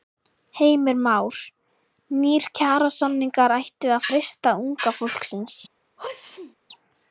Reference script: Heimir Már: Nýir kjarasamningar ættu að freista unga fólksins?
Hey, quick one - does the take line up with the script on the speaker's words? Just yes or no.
yes